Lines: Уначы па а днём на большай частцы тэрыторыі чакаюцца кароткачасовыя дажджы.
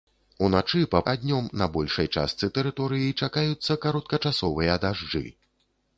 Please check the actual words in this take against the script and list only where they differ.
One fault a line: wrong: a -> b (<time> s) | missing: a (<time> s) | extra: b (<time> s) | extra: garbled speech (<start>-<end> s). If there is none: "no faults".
no faults